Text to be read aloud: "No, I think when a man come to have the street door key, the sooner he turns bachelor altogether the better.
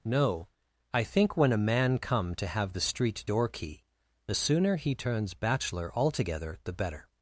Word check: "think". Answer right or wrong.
right